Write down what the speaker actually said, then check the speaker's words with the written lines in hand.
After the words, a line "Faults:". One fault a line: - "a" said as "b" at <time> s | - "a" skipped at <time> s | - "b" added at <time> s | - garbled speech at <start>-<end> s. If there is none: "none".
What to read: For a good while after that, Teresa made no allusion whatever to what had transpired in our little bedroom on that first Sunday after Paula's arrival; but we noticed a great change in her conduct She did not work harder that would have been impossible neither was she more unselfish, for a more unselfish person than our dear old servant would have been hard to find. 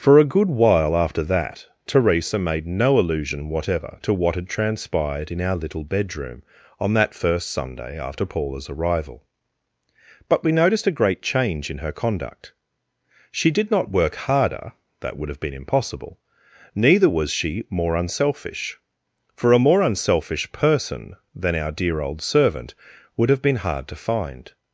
For a good while after that, Teresa made no allusion whatever to what had transpired in our little bedroom on that first Sunday after Paula's arrival; but we noticed a great change in her conduct She did not work harder that would have been impossible neither was she more unselfish, for a more unselfish person than our dear old servant would have been hard to find.
Faults:
none